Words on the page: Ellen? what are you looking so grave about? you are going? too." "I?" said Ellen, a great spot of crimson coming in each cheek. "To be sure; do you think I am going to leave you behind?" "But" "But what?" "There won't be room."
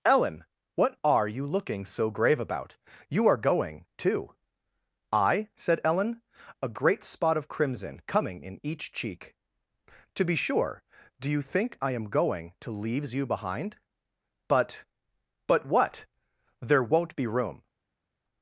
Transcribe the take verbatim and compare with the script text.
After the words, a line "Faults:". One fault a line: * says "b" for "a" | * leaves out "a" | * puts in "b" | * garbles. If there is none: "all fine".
Ellen? what are you looking so grave about? you are going? too." "I?" said Ellen, a great spot of crimson coming in each cheek. "To be sure; do you think I am going to leaves you behind?" "But" "But what?" "There won't be room."
Faults:
* says "leaves" for "leave"